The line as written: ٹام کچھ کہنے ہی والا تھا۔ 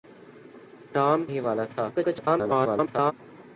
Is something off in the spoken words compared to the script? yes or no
yes